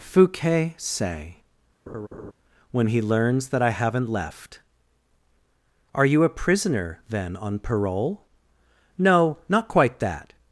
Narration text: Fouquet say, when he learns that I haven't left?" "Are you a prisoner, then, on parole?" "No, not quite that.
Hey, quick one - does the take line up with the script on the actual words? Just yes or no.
yes